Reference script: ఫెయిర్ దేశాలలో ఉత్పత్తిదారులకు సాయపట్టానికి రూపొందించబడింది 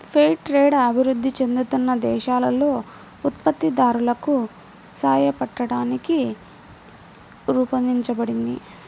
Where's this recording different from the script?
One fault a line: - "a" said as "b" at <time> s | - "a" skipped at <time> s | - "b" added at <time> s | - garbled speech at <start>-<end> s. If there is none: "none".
- "ట్రేడ్ అభివృద్ధి చెందుతున్న" added at 0.5 s